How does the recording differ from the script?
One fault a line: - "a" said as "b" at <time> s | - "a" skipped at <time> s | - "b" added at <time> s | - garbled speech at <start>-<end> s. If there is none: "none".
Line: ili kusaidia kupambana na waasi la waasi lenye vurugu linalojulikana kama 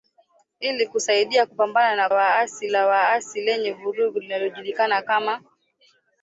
none